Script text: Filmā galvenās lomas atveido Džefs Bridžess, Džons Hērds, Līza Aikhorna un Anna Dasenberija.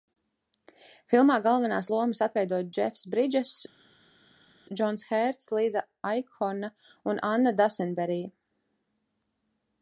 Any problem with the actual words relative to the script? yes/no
no